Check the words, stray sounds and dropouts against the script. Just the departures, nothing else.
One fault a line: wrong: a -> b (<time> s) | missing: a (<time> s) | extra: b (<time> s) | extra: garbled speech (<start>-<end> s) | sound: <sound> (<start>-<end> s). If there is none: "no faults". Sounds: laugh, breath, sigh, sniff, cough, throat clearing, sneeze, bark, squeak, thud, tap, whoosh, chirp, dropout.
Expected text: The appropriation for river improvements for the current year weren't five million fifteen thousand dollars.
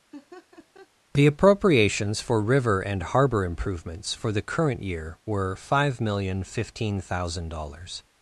sound: laugh (0.1-0.9 s)
wrong: appropriation -> appropriations (1.3 s)
extra: and harbor (2.8 s)
wrong: weren't -> were (5.3 s)